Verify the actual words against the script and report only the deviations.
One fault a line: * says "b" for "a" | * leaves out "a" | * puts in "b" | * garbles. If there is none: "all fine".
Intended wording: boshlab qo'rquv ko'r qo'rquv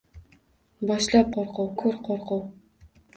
all fine